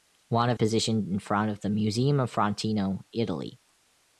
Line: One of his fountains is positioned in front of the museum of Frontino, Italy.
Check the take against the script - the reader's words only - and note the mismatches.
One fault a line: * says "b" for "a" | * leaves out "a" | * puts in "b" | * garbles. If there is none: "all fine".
* leaves out "his fountains is"